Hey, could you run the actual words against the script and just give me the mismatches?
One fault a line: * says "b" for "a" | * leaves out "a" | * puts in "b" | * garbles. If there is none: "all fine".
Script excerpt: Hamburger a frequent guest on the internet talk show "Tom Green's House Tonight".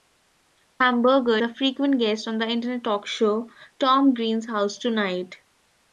all fine